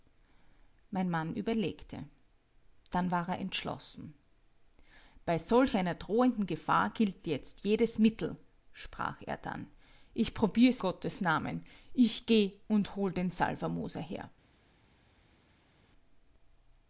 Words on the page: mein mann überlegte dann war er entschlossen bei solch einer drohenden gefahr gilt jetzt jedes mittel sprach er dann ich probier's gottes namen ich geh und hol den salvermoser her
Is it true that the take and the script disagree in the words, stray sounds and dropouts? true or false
false